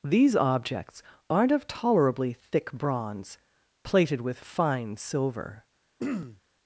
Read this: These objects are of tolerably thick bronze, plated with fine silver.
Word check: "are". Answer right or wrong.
wrong